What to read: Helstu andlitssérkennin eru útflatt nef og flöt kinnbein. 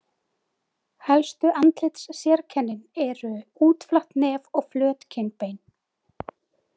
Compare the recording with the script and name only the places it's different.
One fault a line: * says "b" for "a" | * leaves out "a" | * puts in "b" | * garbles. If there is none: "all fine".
all fine